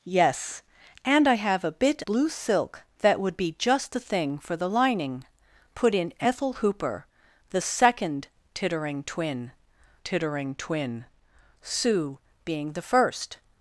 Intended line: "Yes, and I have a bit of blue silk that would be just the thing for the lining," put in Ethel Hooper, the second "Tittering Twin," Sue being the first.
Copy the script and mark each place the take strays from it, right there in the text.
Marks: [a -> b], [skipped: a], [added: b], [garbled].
"Yes, and I have a bit [skipped: of] blue silk that would be just the thing for the lining," put in Ethel Hooper, the second "Tittering Twin," [added: tittering Twin] Sue being the first.